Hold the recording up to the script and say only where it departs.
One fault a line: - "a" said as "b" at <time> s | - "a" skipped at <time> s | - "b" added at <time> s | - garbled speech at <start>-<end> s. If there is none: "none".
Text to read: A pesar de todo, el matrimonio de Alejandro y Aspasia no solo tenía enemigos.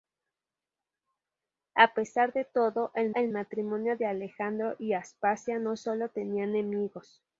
- "el" added at 3.1 s